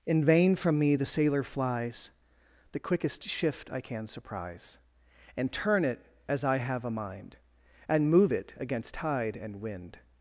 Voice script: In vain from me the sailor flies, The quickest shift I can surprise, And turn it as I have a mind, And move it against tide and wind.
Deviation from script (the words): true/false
false